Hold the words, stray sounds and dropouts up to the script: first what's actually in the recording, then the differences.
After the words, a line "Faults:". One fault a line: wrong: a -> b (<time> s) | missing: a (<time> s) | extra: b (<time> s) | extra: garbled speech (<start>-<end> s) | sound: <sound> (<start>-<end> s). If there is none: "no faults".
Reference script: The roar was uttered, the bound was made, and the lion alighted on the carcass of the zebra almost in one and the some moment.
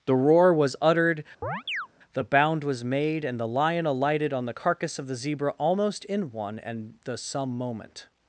The roar was uttered, the bound was made, and the lion alighted on the carcass of the zebra almost in one and the some moment.
Faults:
sound: chirp (1.4-1.9 s)